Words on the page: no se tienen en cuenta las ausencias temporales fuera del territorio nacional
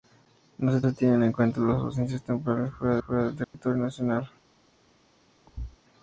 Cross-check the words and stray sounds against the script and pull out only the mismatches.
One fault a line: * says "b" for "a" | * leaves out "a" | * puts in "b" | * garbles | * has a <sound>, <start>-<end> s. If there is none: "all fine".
* puts in "se"
* puts in "fuera"
* has a dropout, 3.4-3.5 s
* has a thud, 5.5-5.8 s